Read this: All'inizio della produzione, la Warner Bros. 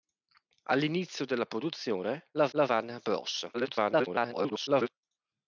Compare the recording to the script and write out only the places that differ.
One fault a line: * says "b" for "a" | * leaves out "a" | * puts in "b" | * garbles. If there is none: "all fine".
* puts in "la"
* garbles